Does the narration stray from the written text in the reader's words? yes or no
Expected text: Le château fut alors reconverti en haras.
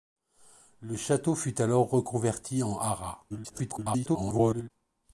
yes